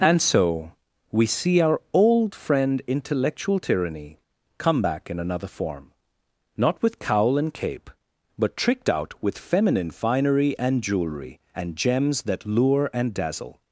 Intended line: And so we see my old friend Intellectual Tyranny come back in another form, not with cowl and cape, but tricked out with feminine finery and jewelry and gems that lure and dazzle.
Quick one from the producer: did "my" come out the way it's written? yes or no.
no